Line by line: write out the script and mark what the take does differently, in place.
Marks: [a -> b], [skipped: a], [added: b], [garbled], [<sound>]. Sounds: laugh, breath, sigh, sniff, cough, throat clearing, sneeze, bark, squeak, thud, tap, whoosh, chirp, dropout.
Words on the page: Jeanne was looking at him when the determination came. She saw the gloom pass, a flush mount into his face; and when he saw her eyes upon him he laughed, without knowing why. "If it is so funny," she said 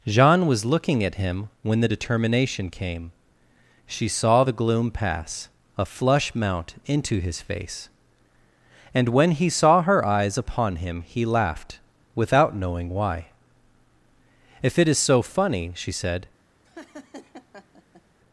Jeanne was looking at him when the determination came. She saw the gloom pass, a flush mount into his face; and when he saw her eyes upon him he laughed, without knowing why. "If it is so funny," she said [laugh]